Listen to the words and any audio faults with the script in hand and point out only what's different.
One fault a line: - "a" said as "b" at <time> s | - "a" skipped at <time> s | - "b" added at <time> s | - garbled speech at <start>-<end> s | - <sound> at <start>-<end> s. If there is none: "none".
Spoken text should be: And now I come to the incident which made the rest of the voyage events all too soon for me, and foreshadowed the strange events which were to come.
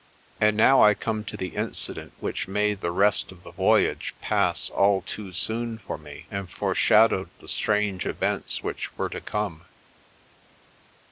- "events" said as "pass" at 4.2 s